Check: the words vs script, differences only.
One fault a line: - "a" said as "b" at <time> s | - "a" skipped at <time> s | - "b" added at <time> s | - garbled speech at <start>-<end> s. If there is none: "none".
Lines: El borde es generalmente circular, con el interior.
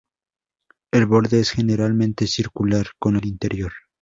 none